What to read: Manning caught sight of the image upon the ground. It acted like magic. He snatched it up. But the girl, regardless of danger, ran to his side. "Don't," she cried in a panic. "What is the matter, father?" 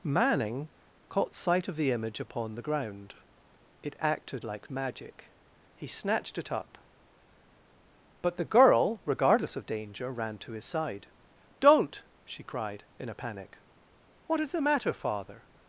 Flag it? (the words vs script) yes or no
no